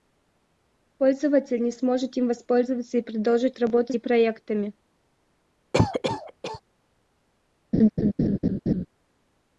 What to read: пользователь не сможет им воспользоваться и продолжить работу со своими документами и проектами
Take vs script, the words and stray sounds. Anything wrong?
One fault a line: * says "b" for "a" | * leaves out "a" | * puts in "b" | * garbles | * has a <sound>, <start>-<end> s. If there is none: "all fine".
* leaves out "со своими документами"
* has a cough, 5.7-6.6 s
* has a laugh, 7.7-8.9 s